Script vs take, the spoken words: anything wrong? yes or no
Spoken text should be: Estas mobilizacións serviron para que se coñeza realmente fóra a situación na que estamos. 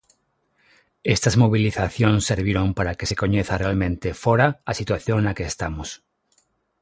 no